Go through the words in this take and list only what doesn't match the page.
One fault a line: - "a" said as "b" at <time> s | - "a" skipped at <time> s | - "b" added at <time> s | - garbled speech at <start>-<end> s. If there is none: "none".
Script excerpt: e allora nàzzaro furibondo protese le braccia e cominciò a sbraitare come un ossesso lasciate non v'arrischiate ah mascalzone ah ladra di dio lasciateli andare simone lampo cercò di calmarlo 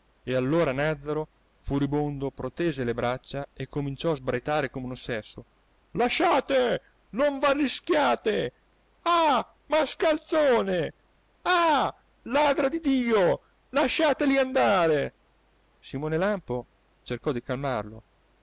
none